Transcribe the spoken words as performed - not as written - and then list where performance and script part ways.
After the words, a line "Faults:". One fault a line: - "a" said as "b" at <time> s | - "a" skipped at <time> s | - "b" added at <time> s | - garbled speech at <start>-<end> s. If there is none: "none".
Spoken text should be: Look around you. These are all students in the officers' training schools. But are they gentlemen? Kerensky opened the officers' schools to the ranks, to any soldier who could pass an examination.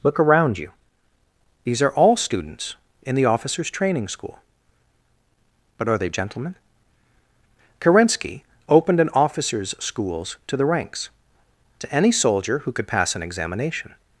Look around you. These are all students in the officers' training school. But are they gentlemen? Kerensky opened an officers' schools to the ranks, to any soldier who could pass an examination.
Faults:
- "schools" said as "school" at 4.1 s
- "the" said as "an" at 9.0 s